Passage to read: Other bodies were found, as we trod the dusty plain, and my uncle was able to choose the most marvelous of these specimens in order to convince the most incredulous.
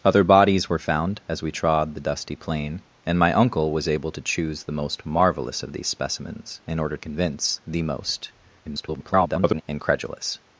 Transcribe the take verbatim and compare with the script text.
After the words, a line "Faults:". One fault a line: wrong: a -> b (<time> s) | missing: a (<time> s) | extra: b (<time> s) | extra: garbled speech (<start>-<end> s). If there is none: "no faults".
Other bodies were found, as we trod the dusty plain, and my uncle was able to choose the most marvelous of these specimens in order convince the most [garbled] incredulous.
Faults:
missing: to (7.0 s)
extra: garbled speech (8.6-9.6 s)